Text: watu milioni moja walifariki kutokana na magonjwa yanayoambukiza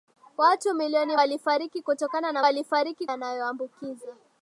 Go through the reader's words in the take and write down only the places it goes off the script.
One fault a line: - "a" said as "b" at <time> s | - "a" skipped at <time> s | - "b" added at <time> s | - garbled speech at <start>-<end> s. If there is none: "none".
- "moja" skipped at 1.2 s
- "magonjwa" said as "walifariki" at 2.4 s